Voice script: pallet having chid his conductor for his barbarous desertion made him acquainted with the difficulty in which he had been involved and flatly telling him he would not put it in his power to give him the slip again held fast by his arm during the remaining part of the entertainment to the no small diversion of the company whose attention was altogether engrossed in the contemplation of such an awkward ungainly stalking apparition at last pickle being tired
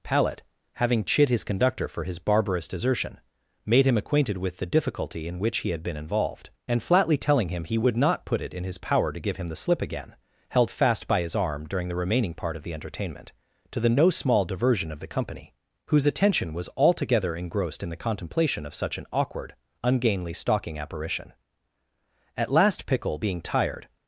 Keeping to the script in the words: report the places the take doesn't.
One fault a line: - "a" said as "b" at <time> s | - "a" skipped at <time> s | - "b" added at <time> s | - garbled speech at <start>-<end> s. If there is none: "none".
none